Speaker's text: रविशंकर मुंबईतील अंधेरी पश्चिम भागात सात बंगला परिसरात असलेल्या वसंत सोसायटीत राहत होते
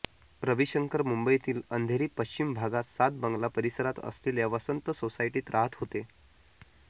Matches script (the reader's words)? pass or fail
pass